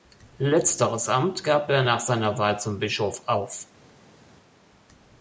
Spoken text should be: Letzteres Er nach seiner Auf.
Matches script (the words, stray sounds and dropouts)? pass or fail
fail